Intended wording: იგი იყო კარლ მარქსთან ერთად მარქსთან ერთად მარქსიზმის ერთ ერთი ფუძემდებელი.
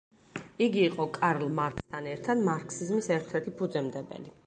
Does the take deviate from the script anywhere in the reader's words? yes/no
yes